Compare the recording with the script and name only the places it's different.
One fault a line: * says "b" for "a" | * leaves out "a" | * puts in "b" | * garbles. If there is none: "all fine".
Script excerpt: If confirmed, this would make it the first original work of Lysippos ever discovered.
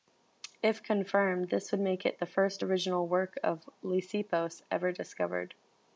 all fine